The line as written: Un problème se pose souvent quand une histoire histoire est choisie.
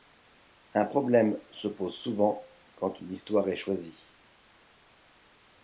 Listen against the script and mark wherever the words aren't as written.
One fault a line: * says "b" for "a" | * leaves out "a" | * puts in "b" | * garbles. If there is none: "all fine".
* leaves out "histoire"